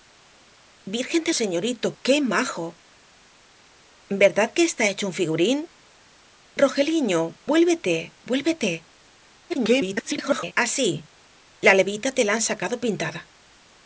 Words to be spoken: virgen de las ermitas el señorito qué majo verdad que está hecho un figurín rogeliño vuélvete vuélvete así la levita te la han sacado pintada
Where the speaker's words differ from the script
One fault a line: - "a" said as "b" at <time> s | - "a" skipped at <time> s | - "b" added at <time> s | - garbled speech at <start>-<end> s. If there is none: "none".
- "las ermitas el" skipped at 1.3 s
- garbled speech at 9.5-10.5 s